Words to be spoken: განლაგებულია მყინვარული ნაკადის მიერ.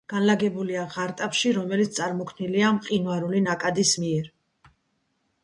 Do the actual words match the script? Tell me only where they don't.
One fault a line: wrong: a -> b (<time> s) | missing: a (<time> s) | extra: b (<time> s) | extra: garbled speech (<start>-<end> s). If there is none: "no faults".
extra: ღარტაფში რომელიც წარმოქმნილია (0.9 s)